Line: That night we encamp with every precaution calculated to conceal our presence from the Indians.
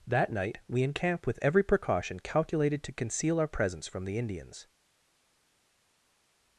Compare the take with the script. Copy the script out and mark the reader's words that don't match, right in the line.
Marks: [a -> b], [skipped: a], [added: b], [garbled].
That night we encamp with every precaution calculated to conceal our presence from the Indians.